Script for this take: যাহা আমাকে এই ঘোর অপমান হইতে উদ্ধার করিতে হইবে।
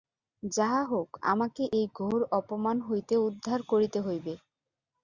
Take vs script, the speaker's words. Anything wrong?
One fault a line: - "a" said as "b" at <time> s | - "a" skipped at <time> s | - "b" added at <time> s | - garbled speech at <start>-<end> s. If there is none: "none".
- "হউক" added at 0.8 s